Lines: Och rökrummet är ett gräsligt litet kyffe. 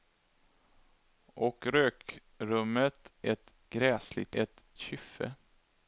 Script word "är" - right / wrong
wrong